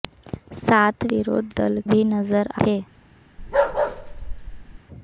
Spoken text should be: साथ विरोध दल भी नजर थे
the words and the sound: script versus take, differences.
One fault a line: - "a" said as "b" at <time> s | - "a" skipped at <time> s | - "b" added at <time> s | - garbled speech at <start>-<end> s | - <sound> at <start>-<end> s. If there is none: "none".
- bark at 3.4-4.8 s